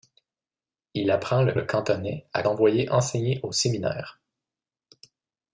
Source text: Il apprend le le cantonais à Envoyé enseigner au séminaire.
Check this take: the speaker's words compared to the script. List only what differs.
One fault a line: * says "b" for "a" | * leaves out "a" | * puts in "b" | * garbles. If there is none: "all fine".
all fine